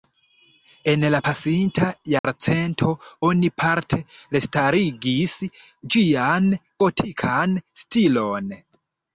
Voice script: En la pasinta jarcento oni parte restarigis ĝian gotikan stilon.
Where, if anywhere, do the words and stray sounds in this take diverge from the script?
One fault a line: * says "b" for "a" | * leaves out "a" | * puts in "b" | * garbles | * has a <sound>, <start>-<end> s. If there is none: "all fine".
* has a dropout, 2.2-2.2 s